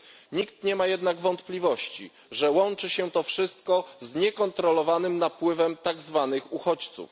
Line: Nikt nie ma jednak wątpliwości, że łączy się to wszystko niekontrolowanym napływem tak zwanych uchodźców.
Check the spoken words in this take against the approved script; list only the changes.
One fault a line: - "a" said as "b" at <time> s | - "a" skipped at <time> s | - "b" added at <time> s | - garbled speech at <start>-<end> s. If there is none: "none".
- "z" added at 4.0 s